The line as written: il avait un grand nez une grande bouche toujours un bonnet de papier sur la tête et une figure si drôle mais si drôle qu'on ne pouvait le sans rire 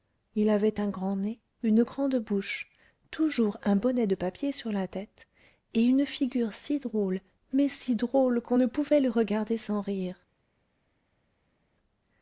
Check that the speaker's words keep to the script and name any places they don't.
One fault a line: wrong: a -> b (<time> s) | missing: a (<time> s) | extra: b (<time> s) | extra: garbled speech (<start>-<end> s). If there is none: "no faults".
extra: regarder (9.1 s)